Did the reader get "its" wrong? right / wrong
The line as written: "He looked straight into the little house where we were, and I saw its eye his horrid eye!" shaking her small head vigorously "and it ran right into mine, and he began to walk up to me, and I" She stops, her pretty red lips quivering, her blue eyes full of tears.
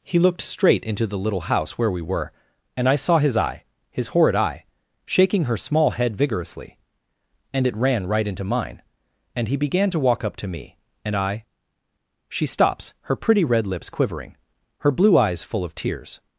wrong